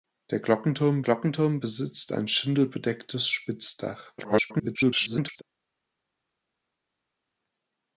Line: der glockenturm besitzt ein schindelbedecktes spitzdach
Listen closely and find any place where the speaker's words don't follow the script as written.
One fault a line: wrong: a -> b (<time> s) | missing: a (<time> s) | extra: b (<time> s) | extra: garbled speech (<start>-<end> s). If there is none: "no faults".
extra: glockenturm (1.0 s)
extra: garbled speech (4.2-5.4 s)